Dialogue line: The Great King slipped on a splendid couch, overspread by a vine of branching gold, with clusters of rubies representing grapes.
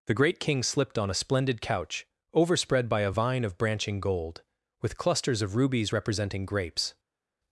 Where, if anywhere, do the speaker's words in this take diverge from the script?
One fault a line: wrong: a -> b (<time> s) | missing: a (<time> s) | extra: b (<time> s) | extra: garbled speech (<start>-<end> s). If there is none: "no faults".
no faults